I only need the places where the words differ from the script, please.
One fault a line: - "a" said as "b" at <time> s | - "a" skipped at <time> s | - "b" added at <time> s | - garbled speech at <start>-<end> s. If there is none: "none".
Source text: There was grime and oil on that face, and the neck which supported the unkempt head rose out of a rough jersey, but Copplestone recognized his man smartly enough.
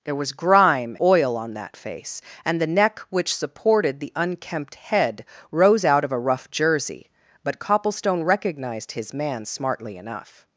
- "and" skipped at 0.9 s